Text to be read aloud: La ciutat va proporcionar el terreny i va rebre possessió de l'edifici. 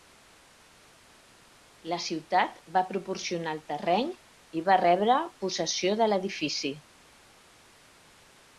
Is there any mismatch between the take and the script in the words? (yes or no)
no